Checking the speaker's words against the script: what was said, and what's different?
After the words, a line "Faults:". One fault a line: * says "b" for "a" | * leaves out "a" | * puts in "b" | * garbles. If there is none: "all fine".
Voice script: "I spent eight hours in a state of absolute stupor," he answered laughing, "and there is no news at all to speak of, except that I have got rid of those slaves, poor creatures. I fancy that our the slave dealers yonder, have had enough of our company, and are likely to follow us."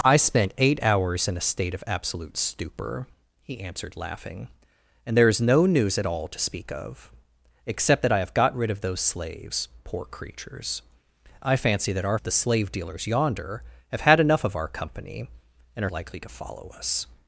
"I spent eight hours in a state of absolute stupor," he answered laughing, "and there is no news at all to speak of, except that I have got rid of those slaves, poor creatures. I fancy that our the slave dealers yonder, have had enough of our company, and are likely to follow us."
Faults:
all fine